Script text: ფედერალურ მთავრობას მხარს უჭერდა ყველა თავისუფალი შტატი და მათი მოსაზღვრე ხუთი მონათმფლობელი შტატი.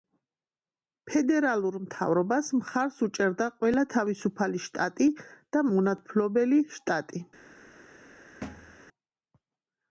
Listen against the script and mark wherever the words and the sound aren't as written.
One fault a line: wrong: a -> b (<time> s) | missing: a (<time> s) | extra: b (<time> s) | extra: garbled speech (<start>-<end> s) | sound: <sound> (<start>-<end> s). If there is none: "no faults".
missing: მათი მოსაზღვრე ხუთი (5.7 s)
sound: thud (8.4-8.8 s)